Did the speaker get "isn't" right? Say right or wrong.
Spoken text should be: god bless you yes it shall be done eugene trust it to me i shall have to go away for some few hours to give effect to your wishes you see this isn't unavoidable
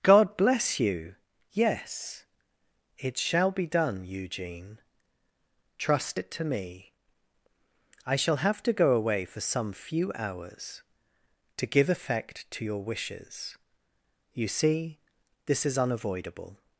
wrong